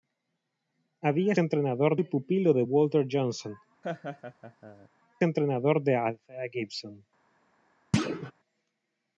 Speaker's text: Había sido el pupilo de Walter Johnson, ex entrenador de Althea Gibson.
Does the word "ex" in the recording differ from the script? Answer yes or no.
yes